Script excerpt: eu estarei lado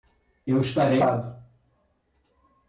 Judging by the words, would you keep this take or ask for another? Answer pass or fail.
pass